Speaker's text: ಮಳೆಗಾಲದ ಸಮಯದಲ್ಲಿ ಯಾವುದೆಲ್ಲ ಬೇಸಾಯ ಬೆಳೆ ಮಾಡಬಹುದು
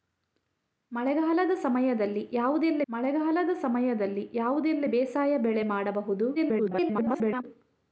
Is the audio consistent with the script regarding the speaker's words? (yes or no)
no